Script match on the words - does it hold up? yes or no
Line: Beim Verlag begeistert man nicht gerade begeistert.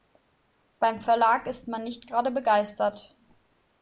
no